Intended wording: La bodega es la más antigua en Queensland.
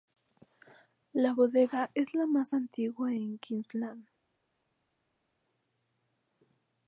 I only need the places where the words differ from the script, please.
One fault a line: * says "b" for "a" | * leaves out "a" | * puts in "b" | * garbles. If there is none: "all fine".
all fine